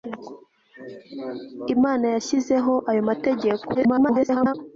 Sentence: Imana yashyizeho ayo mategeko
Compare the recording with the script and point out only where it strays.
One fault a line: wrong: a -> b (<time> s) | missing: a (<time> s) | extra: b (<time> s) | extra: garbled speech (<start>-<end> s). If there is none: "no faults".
extra: garbled speech (3.7-4.5 s)